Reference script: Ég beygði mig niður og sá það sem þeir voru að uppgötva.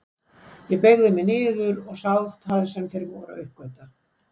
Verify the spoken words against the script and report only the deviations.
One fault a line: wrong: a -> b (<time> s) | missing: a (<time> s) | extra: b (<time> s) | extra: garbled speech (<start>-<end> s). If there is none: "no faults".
no faults